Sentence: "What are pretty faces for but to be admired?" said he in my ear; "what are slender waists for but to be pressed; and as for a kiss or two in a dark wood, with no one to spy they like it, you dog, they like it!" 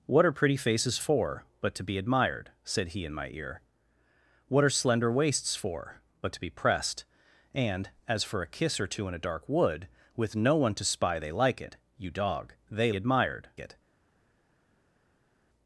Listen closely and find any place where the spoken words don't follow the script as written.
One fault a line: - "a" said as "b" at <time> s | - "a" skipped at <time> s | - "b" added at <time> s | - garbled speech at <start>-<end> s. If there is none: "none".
- "like" said as "admired" at 12.9 s